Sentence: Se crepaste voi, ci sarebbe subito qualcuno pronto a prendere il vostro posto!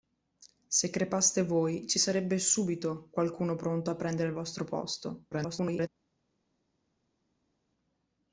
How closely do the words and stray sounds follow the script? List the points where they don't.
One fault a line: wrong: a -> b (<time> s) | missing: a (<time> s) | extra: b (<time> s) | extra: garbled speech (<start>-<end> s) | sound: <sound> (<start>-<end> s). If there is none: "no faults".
extra: garbled speech (5.3-5.9 s)